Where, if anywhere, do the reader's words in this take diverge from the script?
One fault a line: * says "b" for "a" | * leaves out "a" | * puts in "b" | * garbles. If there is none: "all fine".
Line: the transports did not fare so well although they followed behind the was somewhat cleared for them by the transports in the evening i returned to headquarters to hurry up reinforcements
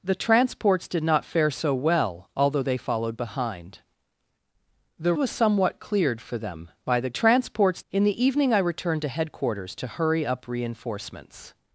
all fine